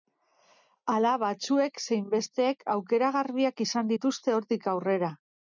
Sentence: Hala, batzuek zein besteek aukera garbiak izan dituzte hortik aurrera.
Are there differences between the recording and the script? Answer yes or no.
no